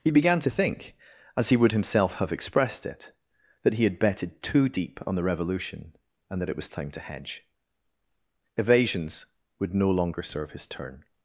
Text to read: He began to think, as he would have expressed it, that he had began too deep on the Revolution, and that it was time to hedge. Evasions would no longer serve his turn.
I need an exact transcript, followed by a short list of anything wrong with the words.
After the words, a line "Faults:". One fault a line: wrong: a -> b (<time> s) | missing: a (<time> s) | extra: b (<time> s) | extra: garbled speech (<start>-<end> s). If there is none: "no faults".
He began to think, as he would himself have expressed it, that he had betted too deep on the Revolution, and that it was time to hedge. Evasions would no longer serve his turn.
Faults:
extra: himself (1.7 s)
wrong: began -> betted (4.0 s)